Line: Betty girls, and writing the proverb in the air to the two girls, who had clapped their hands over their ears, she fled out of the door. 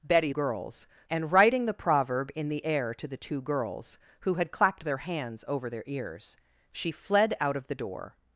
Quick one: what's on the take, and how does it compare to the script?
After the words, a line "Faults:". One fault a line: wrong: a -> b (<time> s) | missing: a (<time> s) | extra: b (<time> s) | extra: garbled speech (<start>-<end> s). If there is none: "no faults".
Betty girls, and writing the proverb in the air to the two girls, who had clapped their hands over their ears, she fled out of the door.
Faults:
no faults